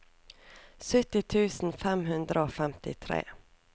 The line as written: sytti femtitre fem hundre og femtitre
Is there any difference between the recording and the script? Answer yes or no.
yes